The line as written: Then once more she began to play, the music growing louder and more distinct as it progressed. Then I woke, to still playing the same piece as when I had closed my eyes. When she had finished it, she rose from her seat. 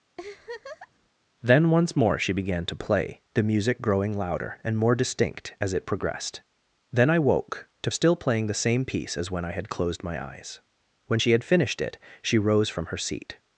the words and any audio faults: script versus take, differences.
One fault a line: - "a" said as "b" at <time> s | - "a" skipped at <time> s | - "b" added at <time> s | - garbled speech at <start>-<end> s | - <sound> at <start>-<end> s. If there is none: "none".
- laugh at 0.2-1.1 s